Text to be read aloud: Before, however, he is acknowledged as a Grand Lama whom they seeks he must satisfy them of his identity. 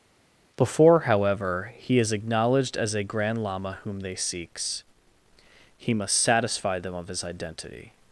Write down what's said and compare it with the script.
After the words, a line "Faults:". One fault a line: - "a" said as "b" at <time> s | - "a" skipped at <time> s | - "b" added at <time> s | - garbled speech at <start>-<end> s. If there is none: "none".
Before, however, he is acknowledged as a Grand Lama whom they seeks he must satisfy them of his identity.
Faults:
none